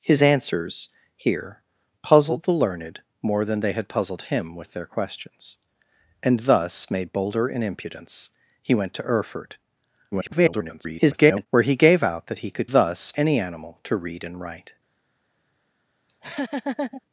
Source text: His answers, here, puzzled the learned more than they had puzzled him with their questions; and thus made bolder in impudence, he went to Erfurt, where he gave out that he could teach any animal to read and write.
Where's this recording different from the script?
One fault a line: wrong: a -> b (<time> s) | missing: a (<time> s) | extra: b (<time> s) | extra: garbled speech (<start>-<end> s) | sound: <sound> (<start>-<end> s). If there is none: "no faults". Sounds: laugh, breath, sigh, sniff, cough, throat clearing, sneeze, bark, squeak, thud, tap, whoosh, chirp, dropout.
extra: garbled speech (10.1-11.5 s)
wrong: teach -> thus (12.7 s)
sound: laugh (16.1-17.0 s)